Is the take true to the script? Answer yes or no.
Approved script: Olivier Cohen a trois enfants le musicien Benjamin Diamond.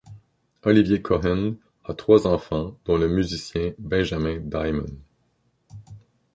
no